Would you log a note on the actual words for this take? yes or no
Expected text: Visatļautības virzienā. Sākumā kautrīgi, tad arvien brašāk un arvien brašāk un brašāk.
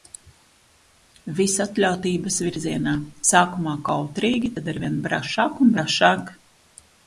yes